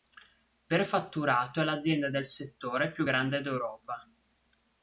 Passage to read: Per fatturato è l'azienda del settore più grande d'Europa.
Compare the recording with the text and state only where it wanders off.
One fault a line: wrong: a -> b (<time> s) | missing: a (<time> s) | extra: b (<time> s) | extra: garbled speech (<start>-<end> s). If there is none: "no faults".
no faults